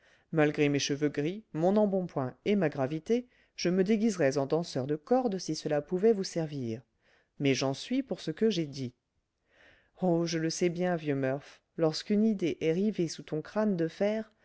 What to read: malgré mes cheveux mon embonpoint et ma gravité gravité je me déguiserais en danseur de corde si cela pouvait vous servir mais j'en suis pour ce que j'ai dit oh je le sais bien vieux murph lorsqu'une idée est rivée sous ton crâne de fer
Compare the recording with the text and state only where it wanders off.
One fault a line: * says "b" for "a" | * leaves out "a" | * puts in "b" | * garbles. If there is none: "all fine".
* puts in "gris"
* leaves out "gravité"